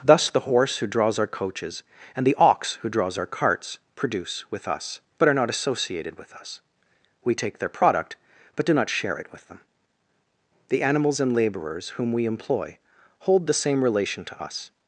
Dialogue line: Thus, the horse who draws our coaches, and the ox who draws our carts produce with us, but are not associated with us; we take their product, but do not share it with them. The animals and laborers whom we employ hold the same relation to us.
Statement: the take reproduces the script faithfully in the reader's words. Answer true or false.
true